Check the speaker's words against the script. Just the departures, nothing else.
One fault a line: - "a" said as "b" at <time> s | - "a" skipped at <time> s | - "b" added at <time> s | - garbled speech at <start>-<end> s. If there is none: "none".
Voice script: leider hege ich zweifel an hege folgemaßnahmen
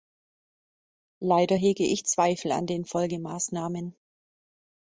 - "hege" said as "den" at 2.7 s